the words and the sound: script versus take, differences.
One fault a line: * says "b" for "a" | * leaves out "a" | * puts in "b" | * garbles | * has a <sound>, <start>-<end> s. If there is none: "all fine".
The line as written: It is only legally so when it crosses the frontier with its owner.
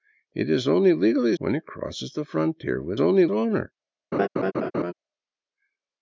* leaves out "so"
* says "only" for "its"
* has a laugh, 4.1-4.9 s